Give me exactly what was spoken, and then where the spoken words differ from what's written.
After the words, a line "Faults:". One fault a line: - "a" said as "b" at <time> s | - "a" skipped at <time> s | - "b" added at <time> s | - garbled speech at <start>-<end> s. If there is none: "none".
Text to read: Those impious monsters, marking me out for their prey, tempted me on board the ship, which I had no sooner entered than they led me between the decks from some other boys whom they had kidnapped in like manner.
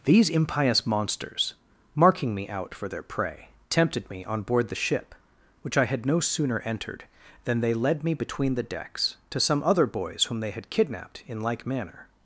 These impious monsters, marking me out for their prey, tempted me on board the ship, which I had no sooner entered than they led me between the decks to some other boys whom they had kidnapped in like manner.
Faults:
- "Those" said as "These" at 0.1 s
- "from" said as "to" at 9.3 s